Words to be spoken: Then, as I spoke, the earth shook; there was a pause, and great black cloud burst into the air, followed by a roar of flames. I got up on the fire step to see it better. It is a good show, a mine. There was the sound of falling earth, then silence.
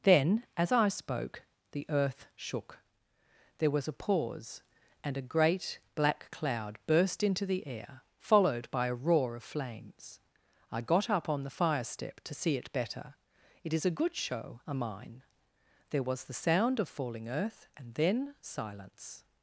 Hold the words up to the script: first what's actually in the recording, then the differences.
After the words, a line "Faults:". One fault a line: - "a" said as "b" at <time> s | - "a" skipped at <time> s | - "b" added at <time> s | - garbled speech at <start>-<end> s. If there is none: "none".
Then, as I spoke, the earth shook; there was a pause, and a great black cloud burst into the air, followed by a roar of flames. I got up on the fire step to see it better. It is a good show, a mine. There was the sound of falling earth, and then silence.
Faults:
- "a" added at 5.2 s
- "and" added at 17.8 s